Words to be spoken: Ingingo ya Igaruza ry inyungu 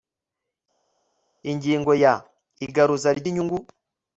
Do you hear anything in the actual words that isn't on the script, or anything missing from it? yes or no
no